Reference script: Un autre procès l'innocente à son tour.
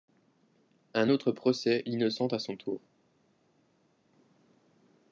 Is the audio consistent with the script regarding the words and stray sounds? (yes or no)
yes